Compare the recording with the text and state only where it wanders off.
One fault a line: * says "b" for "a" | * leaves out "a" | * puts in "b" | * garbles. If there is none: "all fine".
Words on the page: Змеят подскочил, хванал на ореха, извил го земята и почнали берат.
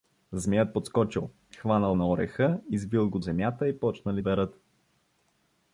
all fine